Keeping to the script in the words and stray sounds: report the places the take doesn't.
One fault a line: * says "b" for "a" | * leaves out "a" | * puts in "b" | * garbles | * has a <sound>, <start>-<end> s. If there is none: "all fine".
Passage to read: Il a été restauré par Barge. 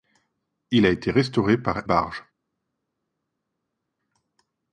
all fine